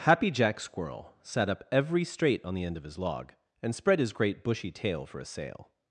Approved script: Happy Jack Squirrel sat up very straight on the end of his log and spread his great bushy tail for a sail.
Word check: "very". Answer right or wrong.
wrong